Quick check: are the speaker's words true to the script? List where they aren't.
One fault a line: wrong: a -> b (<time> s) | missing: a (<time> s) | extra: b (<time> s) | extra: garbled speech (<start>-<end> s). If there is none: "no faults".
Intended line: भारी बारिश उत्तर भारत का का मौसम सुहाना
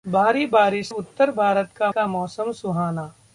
no faults